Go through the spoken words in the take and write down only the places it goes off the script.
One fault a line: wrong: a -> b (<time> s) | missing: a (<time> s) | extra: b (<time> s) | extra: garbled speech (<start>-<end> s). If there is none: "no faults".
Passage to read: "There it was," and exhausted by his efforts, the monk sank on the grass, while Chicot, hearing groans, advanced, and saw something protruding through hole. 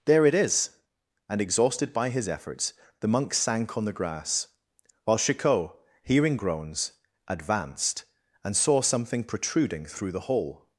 wrong: was -> is (0.3 s)
extra: the (10.1 s)